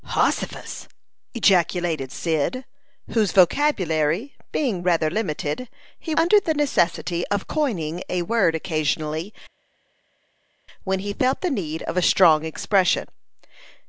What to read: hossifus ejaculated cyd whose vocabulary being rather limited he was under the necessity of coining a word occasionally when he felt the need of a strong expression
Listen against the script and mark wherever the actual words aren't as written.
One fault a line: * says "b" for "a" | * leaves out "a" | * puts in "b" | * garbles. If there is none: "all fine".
* leaves out "was"